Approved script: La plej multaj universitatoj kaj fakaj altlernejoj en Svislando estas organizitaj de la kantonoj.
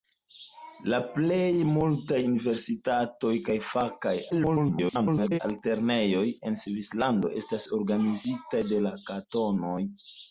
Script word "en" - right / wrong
right